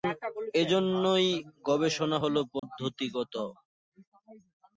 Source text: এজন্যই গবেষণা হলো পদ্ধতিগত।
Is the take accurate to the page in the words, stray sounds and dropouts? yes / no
no